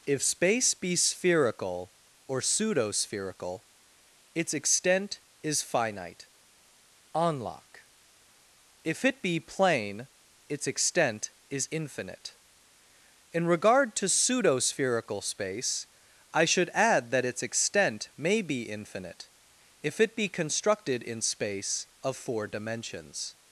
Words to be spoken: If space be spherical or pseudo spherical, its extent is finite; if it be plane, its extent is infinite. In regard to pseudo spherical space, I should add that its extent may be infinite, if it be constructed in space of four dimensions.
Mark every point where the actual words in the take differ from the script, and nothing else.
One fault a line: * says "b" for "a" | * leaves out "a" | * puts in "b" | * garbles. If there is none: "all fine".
* puts in "unlock"